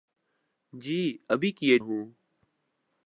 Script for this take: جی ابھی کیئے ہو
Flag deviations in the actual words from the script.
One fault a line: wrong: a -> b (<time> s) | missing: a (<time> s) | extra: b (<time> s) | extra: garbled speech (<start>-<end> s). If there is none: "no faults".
no faults